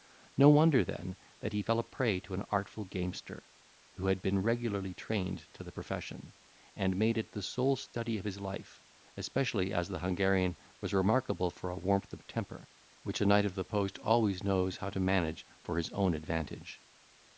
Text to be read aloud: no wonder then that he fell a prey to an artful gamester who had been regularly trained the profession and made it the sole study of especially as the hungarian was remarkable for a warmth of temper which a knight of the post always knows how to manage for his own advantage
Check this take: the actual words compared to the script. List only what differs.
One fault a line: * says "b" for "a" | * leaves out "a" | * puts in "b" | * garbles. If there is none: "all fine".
* puts in "to"
* puts in "his life"